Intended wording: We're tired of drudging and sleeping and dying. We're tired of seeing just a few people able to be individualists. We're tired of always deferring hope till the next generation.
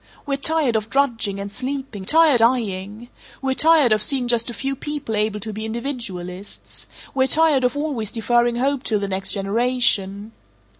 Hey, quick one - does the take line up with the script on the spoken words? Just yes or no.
no